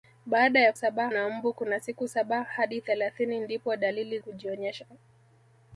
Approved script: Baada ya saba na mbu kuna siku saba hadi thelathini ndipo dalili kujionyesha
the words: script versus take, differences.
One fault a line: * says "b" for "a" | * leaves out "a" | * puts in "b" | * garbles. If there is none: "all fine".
all fine